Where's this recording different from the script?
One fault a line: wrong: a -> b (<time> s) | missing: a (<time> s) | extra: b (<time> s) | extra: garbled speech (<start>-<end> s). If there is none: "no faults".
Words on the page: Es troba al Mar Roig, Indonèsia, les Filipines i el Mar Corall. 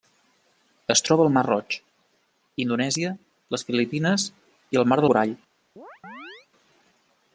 no faults